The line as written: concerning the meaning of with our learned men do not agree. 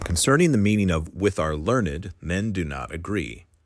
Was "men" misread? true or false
false